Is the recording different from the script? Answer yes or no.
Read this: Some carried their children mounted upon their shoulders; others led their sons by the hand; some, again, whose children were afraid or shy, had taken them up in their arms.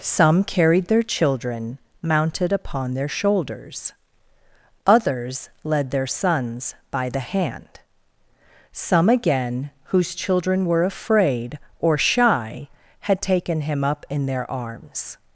yes